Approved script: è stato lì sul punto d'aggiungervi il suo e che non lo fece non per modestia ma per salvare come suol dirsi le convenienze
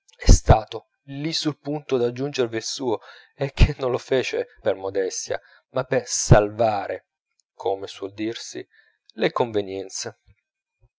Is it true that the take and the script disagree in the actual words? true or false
true